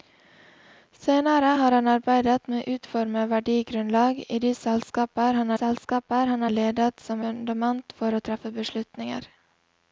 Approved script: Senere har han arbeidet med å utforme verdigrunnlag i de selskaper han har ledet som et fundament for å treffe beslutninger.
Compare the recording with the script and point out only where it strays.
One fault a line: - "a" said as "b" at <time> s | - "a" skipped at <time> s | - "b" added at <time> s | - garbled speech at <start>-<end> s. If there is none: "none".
- "selskaper han" added at 5.6 s
- "et" skipped at 7.2 s